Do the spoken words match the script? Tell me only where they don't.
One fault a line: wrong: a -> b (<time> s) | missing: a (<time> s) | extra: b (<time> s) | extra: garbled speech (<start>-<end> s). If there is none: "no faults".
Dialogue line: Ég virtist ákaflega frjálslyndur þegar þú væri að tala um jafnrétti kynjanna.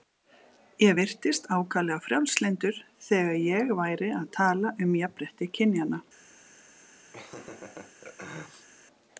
wrong: þú -> ég (3.5 s)